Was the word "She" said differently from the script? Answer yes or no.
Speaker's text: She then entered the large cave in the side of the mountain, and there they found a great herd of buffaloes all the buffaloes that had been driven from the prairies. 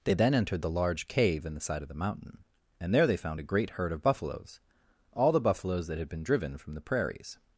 yes